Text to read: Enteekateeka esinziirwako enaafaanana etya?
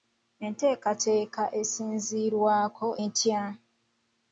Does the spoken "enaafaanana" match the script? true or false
false